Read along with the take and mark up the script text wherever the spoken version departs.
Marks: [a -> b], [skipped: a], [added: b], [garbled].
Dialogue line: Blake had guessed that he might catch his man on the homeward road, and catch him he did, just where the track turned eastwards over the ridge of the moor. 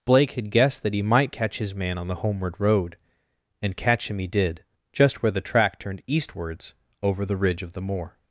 Blake had guessed that he might catch his man on the homeward road, and catch him he did, just where the track turned eastwards over the ridge of the moor.